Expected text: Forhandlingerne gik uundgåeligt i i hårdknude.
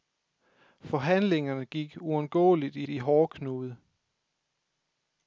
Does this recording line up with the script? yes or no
yes